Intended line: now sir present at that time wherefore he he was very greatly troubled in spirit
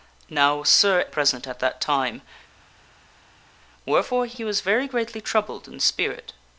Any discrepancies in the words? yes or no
no